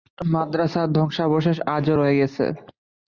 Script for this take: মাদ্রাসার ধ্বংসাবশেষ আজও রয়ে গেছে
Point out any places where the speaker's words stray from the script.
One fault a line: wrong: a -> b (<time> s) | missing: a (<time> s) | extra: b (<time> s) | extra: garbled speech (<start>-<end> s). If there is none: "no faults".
no faults